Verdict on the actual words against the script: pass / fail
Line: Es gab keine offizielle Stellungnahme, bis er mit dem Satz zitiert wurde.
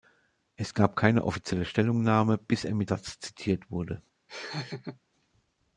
fail